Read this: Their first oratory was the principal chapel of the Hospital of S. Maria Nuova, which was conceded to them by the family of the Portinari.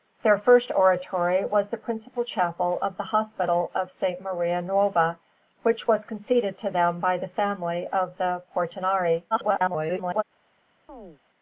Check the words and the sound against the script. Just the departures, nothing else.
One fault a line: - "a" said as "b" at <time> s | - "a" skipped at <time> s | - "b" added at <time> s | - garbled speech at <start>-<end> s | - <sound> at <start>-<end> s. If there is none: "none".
- garbled speech at 9.3-10.2 s
- chirp at 10.9-11.2 s